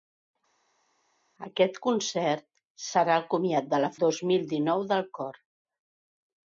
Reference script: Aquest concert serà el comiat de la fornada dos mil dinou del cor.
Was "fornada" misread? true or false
true